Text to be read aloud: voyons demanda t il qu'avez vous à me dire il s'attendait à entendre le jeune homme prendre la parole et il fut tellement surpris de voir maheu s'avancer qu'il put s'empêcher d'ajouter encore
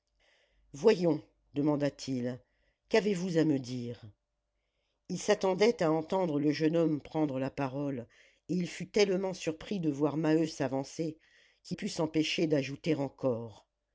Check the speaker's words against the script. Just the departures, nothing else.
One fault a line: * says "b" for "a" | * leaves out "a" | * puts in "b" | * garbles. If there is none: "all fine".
all fine